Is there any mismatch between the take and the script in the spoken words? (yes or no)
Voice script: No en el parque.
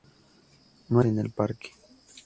no